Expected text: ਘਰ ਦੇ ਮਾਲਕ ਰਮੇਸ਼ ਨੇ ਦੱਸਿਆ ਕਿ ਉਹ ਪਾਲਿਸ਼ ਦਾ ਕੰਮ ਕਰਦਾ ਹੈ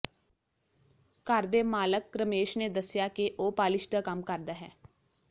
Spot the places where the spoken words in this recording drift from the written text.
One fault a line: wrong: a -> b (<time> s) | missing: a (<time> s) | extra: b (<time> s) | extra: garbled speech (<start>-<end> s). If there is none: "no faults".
no faults